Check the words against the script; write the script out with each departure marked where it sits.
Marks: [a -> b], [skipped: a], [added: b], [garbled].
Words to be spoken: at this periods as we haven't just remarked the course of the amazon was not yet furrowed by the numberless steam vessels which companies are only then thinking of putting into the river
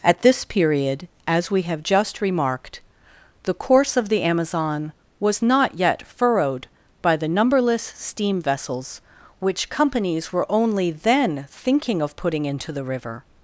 at this [periods -> period] as we [haven't -> have] just remarked the course of the amazon was not yet furrowed by the numberless steam vessels which companies [are -> were] only then thinking of putting into the river